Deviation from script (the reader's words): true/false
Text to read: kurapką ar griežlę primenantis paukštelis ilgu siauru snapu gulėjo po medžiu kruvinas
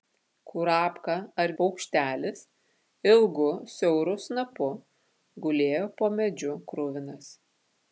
true